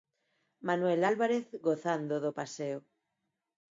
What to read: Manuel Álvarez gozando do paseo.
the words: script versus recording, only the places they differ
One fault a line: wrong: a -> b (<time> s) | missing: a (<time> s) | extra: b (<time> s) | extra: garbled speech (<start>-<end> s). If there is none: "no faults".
no faults